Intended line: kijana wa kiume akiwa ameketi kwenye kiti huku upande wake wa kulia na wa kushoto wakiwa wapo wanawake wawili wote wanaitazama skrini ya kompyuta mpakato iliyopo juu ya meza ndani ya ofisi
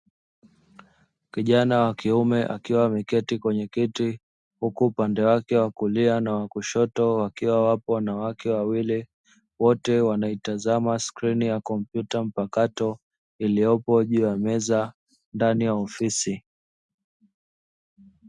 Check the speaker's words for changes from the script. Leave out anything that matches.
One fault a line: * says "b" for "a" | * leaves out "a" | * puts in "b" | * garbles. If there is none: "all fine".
all fine